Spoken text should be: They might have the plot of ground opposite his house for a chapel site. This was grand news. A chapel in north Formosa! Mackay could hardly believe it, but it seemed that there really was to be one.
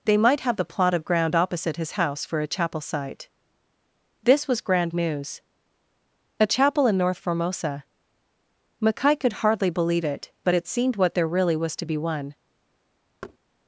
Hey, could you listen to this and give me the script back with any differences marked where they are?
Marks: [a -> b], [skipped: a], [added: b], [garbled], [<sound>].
They might have the plot of ground opposite his house for a chapel site. This was grand news. A chapel in north Formosa! Mackay could hardly believe it, but it seemed [that -> what] there really was to be one. [thud]